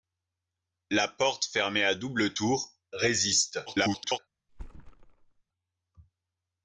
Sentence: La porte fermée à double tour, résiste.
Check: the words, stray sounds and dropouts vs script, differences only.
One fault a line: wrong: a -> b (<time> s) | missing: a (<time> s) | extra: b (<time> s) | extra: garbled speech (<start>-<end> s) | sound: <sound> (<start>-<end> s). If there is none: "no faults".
extra: garbled speech (3.7-4.2 s)
sound: thud (4.5-5.4 s)